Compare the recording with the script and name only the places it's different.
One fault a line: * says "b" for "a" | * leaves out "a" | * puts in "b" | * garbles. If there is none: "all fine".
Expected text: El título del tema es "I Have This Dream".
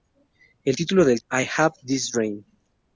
* leaves out "tema es"